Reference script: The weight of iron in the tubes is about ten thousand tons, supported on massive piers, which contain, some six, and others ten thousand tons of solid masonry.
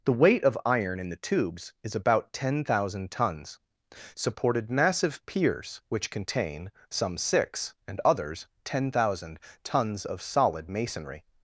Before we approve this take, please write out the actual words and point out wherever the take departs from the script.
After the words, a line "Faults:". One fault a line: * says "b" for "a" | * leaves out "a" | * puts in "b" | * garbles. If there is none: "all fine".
The weight of iron in the tubes is about ten thousand tons, supported massive piers, which contain, some six, and others ten thousand tons of solid masonry.
Faults:
* leaves out "on"